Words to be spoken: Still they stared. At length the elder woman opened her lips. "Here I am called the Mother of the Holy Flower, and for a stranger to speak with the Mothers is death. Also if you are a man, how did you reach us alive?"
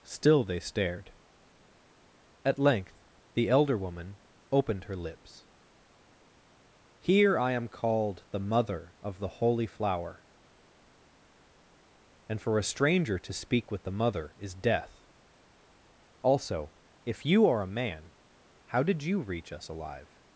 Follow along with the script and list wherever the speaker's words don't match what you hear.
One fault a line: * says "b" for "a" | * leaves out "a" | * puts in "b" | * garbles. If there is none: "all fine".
* says "Mother" for "Mothers"